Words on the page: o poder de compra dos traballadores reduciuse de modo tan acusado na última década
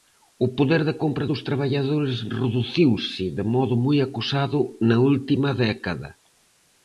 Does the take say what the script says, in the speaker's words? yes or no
no